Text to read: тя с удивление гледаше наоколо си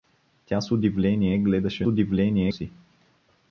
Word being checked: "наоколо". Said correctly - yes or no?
no